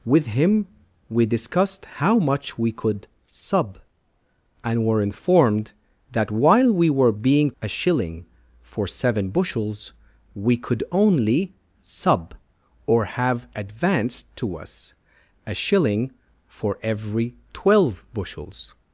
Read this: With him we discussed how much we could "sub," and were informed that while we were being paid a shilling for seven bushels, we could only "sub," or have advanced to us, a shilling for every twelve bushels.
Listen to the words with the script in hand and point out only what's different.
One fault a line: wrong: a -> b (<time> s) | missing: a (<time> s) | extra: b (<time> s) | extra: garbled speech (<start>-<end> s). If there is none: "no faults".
missing: paid (7.5 s)